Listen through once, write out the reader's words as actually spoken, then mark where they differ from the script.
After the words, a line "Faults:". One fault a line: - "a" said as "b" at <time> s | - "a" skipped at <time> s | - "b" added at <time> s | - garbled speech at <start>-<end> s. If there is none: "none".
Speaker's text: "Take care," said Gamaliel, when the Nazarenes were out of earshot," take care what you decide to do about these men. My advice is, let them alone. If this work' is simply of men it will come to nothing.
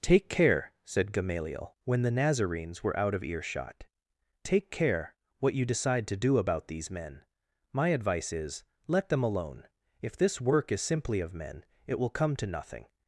"Take care," said Gamaliel, when the Nazarenes were out of earshot," take care what you decide to do about these men. My advice is, let them alone. If this work' is simply of men it will come to nothing.
Faults:
none